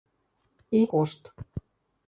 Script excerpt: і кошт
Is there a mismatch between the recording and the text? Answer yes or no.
no